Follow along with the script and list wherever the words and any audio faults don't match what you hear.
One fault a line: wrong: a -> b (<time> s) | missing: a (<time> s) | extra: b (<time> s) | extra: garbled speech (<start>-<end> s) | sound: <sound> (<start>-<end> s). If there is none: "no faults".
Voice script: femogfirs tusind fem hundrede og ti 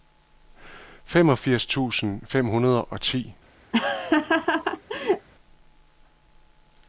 sound: laugh (3.7-5.3 s)